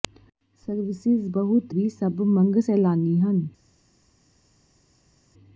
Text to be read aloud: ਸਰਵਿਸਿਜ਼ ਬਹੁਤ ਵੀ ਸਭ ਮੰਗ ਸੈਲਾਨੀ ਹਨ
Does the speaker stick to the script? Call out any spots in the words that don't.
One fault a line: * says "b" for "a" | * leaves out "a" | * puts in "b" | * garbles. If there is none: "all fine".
all fine